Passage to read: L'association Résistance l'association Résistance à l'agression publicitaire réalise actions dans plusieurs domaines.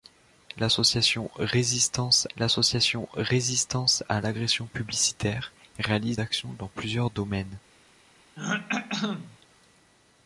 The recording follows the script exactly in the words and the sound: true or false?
false